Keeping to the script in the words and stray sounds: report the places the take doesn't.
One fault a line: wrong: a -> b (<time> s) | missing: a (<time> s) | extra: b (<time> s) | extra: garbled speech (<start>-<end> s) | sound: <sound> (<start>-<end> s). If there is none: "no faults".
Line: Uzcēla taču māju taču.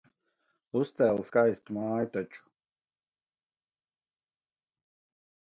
wrong: taču -> skaistu (1.3 s)